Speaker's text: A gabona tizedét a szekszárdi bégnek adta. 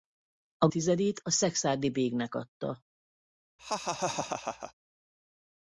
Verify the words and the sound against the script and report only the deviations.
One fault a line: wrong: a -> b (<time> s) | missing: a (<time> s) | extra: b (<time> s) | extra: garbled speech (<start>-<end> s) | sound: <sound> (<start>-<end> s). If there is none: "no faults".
missing: gabona (0.7 s)
sound: laugh (3.6-4.7 s)